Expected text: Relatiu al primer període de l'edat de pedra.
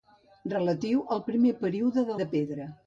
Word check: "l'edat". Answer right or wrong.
wrong